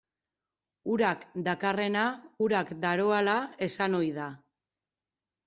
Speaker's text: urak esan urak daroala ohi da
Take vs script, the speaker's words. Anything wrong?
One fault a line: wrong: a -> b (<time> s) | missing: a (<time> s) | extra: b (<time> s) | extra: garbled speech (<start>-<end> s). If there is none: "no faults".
wrong: esan -> dakarrena (1.5 s)
extra: esan (3.7 s)